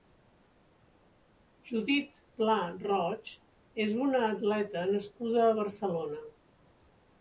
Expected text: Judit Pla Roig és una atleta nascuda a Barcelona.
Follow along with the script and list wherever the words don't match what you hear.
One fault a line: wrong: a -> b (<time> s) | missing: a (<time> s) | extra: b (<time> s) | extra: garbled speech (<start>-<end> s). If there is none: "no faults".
no faults